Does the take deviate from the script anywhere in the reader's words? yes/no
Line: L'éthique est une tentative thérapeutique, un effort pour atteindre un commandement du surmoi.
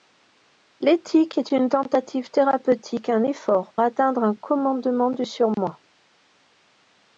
yes